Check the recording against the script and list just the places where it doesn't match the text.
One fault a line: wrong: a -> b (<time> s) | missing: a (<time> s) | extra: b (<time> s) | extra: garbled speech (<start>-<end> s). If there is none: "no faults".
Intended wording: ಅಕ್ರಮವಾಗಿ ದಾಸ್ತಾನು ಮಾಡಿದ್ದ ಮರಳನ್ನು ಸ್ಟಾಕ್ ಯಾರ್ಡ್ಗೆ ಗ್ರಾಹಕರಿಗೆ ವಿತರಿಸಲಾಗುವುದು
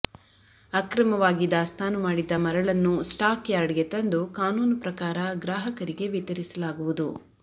extra: ತಂದು ಕಾನೂನು ಪ್ರಕಾರ (3.9 s)